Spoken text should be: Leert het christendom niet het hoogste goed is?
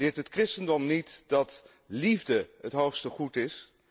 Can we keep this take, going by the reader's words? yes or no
no